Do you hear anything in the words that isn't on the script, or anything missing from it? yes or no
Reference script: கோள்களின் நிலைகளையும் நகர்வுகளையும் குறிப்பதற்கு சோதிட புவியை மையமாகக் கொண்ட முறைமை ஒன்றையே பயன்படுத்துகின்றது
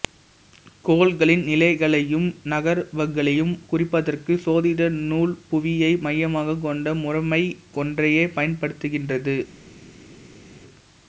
yes